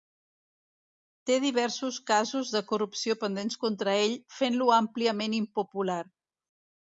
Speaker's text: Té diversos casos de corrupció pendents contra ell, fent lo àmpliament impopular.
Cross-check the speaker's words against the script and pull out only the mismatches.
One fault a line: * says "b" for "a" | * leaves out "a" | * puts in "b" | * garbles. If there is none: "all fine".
all fine